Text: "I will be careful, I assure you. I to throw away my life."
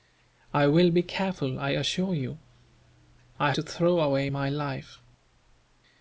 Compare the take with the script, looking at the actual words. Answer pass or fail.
pass